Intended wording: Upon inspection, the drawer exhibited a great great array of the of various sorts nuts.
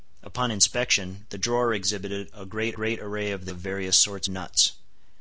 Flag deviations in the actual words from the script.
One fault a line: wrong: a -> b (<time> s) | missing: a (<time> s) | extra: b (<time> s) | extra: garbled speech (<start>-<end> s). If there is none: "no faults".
no faults